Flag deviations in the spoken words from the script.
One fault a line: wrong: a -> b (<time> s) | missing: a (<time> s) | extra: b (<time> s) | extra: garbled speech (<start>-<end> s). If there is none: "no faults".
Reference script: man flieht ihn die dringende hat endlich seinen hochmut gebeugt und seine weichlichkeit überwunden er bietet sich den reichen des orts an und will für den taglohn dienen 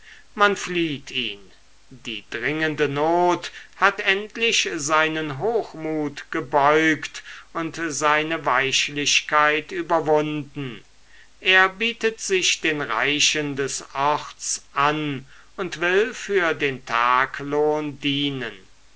extra: not (2.9 s)